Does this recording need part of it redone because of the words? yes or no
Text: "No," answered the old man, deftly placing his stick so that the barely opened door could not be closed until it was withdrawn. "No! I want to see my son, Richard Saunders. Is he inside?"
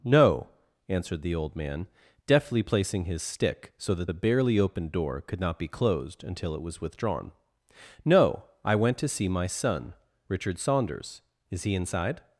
yes